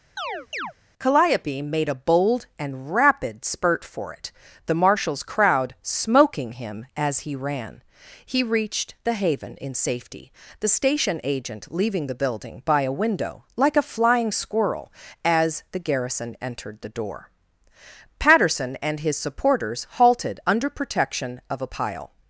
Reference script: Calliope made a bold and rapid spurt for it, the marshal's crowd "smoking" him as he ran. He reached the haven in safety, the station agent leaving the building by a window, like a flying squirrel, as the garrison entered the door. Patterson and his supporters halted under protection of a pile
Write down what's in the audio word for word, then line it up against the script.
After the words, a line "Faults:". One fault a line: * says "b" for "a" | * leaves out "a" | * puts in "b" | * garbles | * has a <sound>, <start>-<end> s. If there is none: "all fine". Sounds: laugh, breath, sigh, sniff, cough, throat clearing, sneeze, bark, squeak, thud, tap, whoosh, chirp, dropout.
Calliope made a bold and rapid spurt for it, the marshal's crowd "smoking" him as he ran. He reached the haven in safety, the station agent leaving the building by a window, like a flying squirrel, as the garrison entered the door. Patterson and his supporters halted under protection of a pile
Faults:
* has a chirp, 0.2-0.7 s